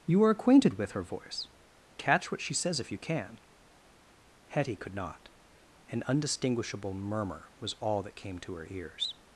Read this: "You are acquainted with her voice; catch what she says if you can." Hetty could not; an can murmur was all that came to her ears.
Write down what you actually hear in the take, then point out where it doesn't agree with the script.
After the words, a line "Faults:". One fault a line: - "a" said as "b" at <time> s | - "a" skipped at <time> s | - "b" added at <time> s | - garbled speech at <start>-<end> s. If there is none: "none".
"You are acquainted with her voice; catch what she says if you can." Hetty could not; an undistinguishable murmur was all that came to her ears.
Faults:
- "can" said as "undistinguishable" at 6.1 s